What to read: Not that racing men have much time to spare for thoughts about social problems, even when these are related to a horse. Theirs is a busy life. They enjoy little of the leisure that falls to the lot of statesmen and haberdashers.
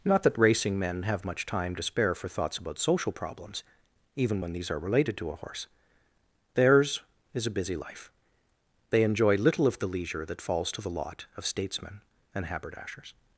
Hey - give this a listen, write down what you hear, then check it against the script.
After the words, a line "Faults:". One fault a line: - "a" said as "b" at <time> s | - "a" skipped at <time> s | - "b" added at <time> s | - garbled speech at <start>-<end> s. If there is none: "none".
Not that racing men have much time to spare for thoughts about social problems, even when these are related to a horse. Theirs is a busy life. They enjoy little of the leisure that falls to the lot of statesmen and haberdashers.
Faults:
none